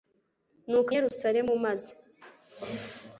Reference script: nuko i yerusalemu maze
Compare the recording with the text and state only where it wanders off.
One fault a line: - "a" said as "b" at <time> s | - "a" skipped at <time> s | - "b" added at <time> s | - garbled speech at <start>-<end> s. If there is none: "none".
none